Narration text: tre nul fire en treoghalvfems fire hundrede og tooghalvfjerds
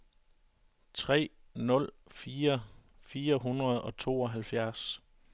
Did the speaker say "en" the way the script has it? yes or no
no